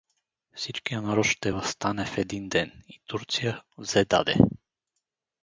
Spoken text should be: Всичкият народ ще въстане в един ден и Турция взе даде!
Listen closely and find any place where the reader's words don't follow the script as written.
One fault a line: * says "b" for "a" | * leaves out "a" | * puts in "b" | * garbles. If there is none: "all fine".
all fine